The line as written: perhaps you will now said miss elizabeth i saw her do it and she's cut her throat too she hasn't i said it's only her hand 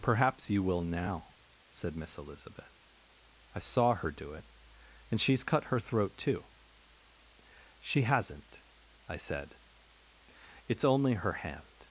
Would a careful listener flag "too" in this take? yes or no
no